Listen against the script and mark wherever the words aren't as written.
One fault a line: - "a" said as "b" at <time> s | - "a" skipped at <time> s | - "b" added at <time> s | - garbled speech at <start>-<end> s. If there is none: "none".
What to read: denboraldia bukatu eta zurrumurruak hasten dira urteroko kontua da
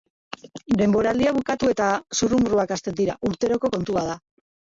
none